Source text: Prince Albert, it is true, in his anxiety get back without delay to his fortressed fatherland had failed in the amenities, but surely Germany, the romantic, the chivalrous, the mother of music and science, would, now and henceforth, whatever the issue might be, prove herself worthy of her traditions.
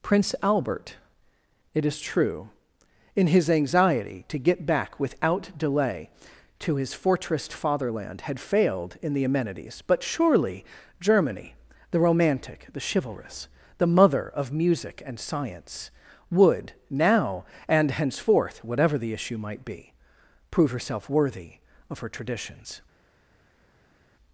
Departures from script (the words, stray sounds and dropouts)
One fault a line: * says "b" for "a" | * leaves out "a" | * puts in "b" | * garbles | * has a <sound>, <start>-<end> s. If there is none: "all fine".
* puts in "to"